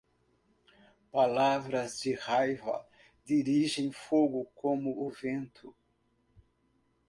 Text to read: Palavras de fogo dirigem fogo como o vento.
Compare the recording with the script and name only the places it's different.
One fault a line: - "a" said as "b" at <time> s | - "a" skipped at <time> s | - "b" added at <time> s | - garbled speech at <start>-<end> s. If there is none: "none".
- "fogo" said as "raiva" at 2.1 s